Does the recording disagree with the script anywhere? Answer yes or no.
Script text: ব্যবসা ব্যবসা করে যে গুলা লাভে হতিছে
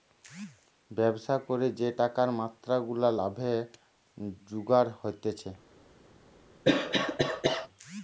yes